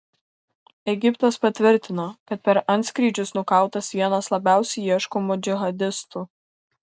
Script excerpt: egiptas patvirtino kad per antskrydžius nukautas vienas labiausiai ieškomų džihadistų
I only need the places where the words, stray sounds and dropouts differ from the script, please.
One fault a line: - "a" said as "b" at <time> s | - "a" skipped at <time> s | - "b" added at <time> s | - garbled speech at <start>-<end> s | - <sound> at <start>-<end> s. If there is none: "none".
none